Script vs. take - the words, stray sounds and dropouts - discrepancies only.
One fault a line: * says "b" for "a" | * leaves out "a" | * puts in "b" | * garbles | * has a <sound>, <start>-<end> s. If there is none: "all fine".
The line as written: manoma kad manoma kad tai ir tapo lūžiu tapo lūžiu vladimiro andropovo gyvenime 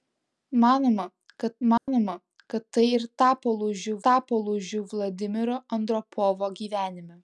* has a dropout, 1.8-1.9 s